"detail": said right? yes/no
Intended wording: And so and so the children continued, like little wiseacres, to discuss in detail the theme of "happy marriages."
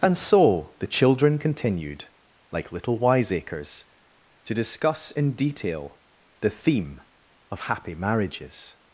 yes